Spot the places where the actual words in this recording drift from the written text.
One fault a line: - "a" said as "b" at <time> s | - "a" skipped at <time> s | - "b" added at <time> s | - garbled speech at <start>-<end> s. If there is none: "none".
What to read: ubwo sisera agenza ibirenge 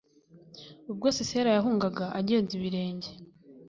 - "yahungaga" added at 1.6 s